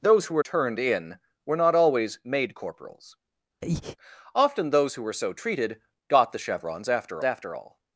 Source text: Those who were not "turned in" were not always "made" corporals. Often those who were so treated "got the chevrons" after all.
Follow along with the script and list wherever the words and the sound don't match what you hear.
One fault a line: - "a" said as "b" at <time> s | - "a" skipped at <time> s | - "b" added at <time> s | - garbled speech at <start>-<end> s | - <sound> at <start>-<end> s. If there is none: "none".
- "not" skipped at 0.4 s
- breath at 3.6-4.0 s
- "after" added at 7.2 s